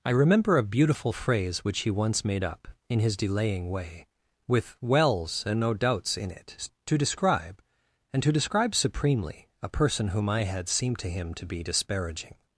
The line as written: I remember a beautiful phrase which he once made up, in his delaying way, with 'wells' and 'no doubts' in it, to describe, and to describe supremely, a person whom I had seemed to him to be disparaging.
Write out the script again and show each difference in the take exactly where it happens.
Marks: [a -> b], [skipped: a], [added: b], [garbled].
I remember a beautiful phrase which he once made up, in his delaying way, with 'wells' and 'no doubts' in it, to describe, and to describe supremely, a person whom I had seemed to him to be disparaging.